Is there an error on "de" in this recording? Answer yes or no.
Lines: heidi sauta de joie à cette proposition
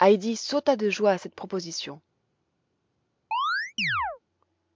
no